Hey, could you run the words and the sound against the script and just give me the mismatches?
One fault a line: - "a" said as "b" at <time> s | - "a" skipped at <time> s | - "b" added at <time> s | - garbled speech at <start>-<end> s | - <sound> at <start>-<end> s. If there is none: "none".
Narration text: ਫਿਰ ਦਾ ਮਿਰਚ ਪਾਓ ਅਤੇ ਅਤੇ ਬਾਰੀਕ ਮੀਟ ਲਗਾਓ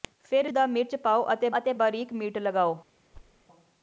- thud at 3.1-3.5 s